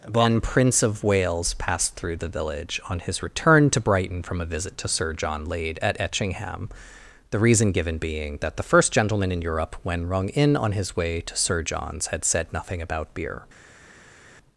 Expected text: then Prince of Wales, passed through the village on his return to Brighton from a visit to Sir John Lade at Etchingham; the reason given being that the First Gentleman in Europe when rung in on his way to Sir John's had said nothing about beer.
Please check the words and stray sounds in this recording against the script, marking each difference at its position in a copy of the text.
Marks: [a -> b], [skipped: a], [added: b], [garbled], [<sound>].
[then -> one] Prince of Wales, passed through the village on his return to Brighton from a visit to Sir John Lade at Etchingham; the reason given being that the First Gentleman in Europe when rung in on his way to Sir John's had said nothing about beer.